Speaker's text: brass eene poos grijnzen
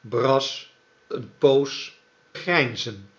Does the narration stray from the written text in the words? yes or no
no